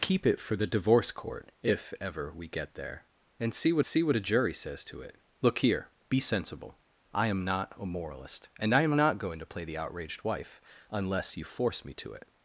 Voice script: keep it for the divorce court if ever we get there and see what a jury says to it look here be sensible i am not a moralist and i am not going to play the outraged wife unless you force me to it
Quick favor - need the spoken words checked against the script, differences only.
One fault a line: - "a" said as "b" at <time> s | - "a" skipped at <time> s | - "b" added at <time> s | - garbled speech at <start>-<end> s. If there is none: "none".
- "see what" added at 3.8 s